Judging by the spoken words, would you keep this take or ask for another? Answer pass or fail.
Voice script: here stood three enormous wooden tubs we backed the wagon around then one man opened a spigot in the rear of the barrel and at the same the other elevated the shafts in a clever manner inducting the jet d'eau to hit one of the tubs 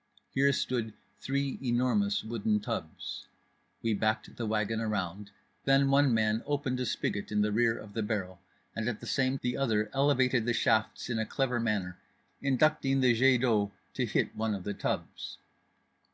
pass